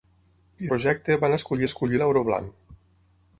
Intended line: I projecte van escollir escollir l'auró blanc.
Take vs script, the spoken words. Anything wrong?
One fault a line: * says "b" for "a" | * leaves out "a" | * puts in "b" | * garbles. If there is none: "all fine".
all fine